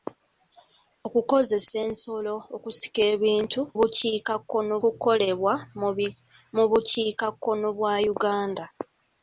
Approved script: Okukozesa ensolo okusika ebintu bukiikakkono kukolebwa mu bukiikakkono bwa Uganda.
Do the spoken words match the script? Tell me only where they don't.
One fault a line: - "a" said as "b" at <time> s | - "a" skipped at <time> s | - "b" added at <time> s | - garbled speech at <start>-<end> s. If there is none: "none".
none